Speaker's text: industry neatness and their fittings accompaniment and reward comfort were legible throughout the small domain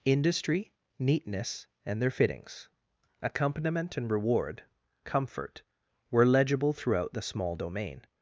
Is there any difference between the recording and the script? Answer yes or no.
no